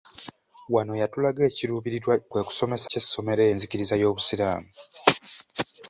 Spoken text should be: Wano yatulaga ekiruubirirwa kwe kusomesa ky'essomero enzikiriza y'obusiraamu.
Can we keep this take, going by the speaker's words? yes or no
yes